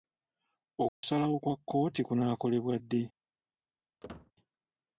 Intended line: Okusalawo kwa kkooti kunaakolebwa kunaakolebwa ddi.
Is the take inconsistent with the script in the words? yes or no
yes